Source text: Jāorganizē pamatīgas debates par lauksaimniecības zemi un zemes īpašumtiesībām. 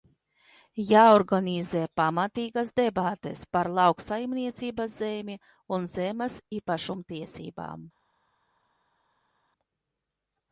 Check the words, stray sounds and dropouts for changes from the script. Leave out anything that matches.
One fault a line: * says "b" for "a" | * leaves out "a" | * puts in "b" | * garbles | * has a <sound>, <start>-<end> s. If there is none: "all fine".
all fine